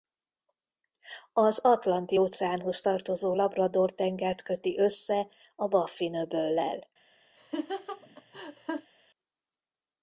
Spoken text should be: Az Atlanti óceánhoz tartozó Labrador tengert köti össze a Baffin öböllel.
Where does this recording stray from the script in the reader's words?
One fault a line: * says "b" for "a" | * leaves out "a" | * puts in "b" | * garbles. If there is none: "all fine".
all fine